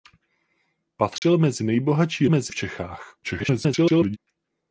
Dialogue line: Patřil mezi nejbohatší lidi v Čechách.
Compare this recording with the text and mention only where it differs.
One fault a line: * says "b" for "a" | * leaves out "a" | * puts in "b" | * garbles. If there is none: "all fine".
* says "mezi" for "lidi"
* garbles